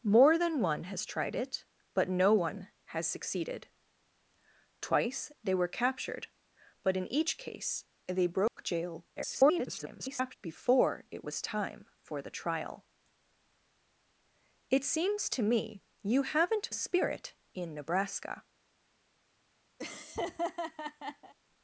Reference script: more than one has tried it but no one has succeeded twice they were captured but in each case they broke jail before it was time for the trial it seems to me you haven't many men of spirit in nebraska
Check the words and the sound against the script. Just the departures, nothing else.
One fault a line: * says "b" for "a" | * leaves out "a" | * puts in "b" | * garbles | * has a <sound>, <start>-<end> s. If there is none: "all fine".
* has a dropout, 8.5-8.6 s
* garbles
* leaves out "many men of"
* has a laugh, 19.8-21.3 s